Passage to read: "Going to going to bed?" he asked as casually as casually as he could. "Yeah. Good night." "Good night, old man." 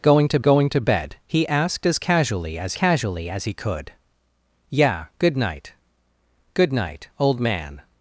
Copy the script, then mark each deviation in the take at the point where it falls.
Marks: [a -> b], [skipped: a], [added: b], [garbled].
"Going to going to bed?" he asked as casually as casually as he could. "Yeah. Good night." "Good night, old man."